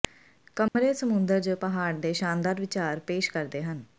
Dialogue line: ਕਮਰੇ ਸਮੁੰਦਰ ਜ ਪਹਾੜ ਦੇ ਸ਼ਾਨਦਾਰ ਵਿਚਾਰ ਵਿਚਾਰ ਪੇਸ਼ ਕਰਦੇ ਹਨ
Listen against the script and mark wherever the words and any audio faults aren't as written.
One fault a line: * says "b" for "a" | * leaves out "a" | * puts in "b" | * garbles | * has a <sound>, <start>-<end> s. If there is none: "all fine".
* has a dropout, 0.7-0.8 s
* leaves out "ਵਿਚਾਰ"